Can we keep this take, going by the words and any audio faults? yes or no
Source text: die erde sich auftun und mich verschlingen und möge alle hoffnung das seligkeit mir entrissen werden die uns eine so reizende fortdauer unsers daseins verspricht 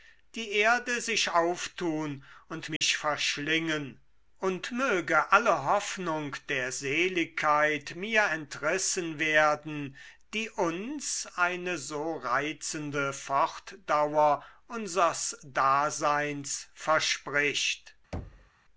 no